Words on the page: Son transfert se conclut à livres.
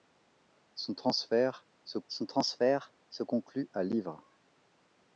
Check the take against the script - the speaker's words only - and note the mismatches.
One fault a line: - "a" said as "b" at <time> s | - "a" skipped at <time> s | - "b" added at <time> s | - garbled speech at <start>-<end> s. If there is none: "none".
- "son transfert se" added at 2.1 s